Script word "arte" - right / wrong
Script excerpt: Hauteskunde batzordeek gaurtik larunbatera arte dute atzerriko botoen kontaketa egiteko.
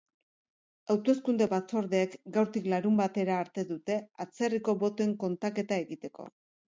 right